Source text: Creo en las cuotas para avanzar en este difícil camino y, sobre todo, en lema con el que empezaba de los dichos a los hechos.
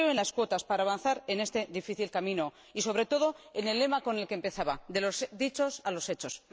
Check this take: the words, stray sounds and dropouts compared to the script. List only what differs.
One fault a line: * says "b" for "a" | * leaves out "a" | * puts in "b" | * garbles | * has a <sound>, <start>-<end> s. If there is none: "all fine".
* puts in "el"